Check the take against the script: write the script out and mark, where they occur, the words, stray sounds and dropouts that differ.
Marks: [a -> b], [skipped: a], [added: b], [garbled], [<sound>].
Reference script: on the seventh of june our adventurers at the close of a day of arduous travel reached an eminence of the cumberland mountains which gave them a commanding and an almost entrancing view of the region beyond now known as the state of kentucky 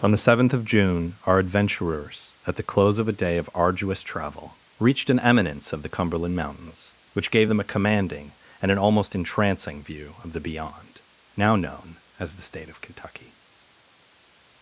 on the seventh of june our adventurers at the close of a day of arduous travel reached an eminence of the cumberland mountains which gave them a commanding and an almost entrancing view of the [skipped: region] beyond now known as the state of kentucky